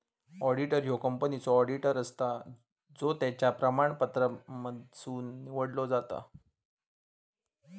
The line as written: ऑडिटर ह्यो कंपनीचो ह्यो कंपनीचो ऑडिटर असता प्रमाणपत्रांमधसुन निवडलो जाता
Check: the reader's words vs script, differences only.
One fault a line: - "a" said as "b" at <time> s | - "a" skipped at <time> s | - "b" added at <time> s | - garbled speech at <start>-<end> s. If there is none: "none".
- "ह्यो कंपनीचो ऑडिटर असता" said as "ऑडिटर असता जो त्याच्या" at 1.6 s